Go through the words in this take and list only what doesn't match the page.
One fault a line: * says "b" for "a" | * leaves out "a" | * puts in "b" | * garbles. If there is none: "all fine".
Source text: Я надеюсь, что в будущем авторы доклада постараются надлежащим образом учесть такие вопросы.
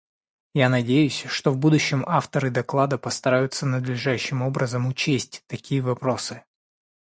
all fine